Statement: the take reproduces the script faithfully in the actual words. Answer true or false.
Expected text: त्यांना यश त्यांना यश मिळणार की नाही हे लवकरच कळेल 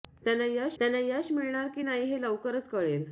true